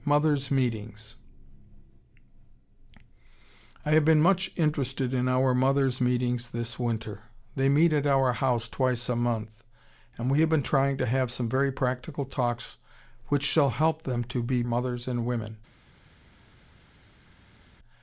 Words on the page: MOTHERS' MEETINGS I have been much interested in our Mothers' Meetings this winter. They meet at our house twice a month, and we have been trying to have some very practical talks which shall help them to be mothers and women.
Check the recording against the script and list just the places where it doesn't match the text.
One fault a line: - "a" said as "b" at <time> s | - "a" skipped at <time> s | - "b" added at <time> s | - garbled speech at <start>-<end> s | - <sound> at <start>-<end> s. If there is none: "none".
none